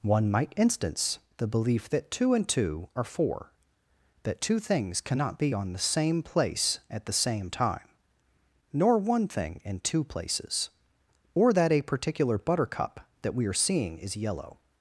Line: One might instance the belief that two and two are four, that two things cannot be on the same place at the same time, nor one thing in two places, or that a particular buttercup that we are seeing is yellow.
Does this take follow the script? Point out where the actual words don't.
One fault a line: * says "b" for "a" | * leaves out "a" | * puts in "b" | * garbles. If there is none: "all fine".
all fine